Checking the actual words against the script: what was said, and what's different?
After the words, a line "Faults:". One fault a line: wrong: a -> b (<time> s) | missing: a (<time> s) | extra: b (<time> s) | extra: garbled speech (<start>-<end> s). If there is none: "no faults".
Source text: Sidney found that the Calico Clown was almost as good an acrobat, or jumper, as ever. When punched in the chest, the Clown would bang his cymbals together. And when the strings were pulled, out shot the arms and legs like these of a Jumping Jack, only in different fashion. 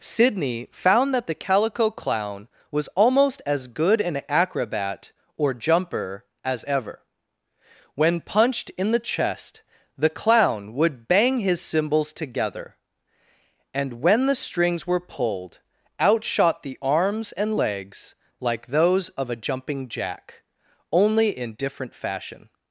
Sidney found that the Calico Clown was almost as good an acrobat, or jumper, as ever. When punched in the chest, the Clown would bang his cymbals together. And when the strings were pulled, out shot the arms and legs like those of a Jumping Jack, only in different fashion.
Faults:
wrong: these -> those (18.7 s)